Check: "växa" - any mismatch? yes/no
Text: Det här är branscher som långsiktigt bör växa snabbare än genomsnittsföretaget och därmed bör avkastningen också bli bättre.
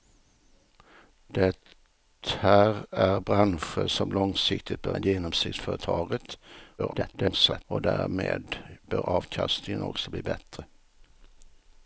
yes